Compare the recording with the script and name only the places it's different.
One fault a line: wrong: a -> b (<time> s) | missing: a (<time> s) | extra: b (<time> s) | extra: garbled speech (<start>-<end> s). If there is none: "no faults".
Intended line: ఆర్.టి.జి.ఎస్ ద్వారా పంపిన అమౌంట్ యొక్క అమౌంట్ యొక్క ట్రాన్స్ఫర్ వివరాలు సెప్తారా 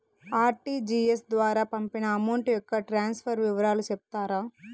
missing: అమౌంట్ యొక్క (2.8 s)